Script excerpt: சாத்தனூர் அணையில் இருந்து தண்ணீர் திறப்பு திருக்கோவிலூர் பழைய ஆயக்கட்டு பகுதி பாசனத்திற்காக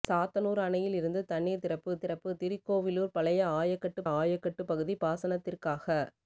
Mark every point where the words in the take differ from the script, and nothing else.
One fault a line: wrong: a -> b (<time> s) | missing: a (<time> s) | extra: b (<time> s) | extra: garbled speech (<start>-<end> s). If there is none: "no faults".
extra: திறப்பு (2.0 s)
extra: ஆயக்கட்டு (4.1 s)